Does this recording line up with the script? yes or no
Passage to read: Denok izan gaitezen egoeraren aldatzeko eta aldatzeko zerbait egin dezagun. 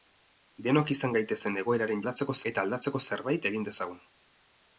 yes